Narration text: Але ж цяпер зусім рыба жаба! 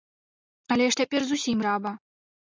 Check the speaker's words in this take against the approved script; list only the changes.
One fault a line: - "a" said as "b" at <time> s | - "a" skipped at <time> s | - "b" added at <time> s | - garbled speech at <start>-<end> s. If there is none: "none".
- "рыба" skipped at 1.6 s